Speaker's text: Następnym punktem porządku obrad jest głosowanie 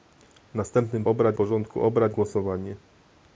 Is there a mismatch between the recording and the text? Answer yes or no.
yes